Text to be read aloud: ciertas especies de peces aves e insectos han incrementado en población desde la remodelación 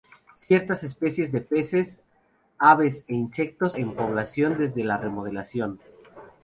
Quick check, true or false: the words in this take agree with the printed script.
false